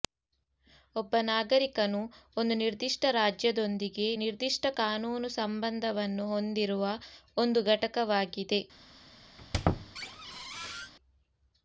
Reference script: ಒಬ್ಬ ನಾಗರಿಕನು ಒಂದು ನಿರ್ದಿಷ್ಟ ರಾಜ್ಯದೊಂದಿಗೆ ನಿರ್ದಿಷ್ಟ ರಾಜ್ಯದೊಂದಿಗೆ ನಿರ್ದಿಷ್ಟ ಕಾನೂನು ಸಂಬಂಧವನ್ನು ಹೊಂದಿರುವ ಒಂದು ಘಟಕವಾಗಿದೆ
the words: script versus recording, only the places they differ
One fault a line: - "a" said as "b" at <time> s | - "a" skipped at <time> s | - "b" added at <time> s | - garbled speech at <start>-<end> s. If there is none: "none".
- "ರಾಜ್ಯದೊಂದಿಗೆ ನಿರ್ದಿಷ್ಟ" skipped at 4.7 s